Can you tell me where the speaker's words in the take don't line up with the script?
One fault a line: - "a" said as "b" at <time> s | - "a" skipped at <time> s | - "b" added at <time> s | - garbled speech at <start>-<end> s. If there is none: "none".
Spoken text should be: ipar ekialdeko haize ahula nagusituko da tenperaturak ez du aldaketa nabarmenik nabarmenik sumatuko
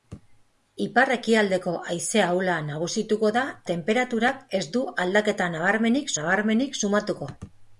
none